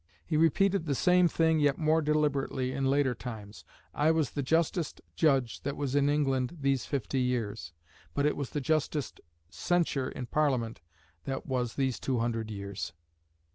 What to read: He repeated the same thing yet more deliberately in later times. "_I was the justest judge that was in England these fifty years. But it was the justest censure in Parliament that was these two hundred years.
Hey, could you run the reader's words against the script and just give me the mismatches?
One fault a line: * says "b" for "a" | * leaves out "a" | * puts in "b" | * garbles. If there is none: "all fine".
all fine